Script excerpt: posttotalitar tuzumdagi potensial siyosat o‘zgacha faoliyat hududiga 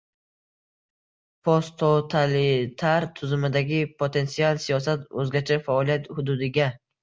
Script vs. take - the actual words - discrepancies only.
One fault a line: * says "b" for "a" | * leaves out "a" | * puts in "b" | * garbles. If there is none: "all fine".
all fine